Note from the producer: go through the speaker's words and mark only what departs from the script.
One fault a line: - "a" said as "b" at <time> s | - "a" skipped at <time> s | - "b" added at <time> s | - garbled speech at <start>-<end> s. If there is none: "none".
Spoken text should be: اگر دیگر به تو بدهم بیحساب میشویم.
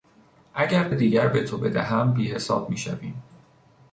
none